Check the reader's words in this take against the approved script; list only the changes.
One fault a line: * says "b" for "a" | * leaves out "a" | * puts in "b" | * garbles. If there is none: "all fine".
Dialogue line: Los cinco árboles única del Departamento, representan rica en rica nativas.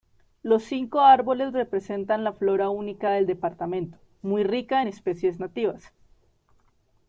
* puts in "representan la flora"
* says "muy" for "representan"
* says "especies" for "rica"